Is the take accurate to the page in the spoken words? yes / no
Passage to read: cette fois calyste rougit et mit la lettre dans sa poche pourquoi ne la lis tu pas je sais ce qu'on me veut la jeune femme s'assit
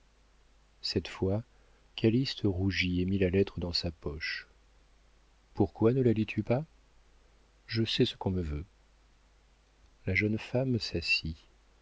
yes